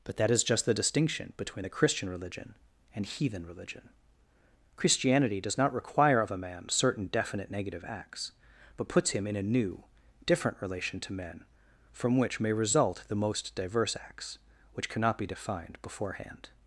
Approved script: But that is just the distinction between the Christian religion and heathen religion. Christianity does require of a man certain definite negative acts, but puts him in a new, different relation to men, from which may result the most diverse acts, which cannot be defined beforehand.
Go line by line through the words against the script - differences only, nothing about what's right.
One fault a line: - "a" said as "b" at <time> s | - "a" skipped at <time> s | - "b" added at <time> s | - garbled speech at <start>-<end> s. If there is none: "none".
- "not" added at 5.6 s